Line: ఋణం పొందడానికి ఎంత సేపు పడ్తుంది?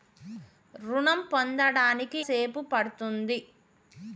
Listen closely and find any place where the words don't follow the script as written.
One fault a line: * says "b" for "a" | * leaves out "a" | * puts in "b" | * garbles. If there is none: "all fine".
* leaves out "ఎంత"